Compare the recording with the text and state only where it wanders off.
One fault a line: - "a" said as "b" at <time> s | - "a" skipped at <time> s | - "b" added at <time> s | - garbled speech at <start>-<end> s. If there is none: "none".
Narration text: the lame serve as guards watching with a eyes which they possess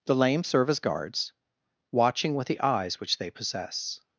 - "a" said as "the" at 2.5 s